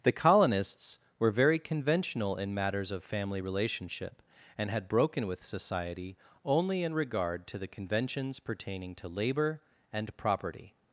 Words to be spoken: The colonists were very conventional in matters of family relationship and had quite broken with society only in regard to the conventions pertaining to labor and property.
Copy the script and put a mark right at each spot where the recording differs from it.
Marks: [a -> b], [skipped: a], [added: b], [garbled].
The colonists were very conventional in matters of family relationship and had [skipped: quite] broken with society only in regard to the conventions pertaining to labor and property.